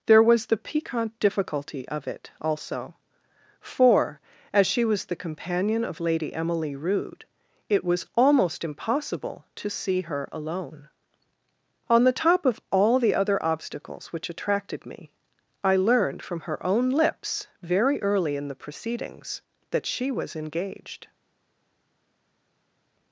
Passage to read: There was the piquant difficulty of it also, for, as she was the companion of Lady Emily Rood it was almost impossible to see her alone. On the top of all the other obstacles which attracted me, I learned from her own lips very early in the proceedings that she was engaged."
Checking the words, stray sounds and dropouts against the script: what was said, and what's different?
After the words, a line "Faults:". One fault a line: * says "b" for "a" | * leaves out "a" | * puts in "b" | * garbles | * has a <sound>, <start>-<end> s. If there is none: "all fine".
There was the piquant difficulty of it also, for, as she was the companion of Lady Emily Rood it was almost impossible to see her alone. On the top of all the other obstacles which attracted me, I learned from her own lips very early in the proceedings that she was engaged."
Faults:
all fine